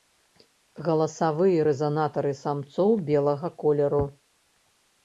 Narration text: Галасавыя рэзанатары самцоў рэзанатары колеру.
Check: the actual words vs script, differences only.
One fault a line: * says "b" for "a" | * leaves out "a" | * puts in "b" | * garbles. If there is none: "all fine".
* says "белага" for "рэзанатары"